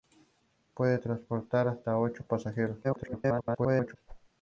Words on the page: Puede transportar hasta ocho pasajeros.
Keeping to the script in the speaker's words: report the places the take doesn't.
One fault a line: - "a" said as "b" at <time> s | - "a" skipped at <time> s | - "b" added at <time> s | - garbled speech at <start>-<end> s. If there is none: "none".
- garbled speech at 2.8-4.0 s